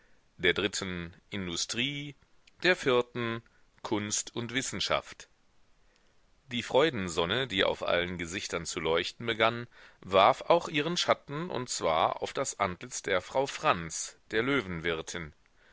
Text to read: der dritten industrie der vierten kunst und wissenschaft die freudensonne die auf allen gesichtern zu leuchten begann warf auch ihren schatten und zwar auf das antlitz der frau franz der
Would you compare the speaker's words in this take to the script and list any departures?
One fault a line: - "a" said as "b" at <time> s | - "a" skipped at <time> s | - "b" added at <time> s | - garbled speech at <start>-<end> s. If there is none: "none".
none